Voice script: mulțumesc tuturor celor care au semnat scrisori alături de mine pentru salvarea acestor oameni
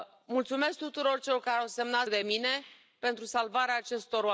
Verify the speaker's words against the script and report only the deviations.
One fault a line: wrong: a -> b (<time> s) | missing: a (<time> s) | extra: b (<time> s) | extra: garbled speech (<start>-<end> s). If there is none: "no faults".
missing: scrisori alături (2.1 s)